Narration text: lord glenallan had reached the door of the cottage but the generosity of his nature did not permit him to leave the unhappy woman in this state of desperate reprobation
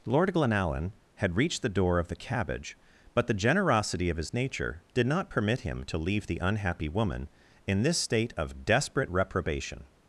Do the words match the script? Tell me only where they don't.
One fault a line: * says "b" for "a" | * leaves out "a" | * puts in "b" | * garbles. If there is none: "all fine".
* says "cabbage" for "cottage"